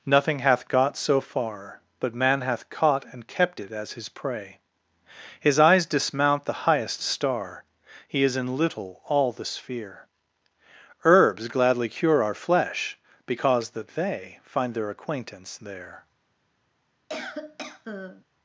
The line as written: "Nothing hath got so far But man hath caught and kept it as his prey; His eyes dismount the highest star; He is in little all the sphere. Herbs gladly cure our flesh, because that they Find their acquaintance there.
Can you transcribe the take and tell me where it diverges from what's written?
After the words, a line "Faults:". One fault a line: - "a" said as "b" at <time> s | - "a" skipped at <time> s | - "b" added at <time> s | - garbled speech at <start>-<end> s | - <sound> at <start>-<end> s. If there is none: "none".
"Nothing hath got so far But man hath caught and kept it as his prey; His eyes dismount the highest star; He is in little all the sphere. Herbs gladly cure our flesh, because that they Find their acquaintance there.
Faults:
- cough at 17.1-18.2 s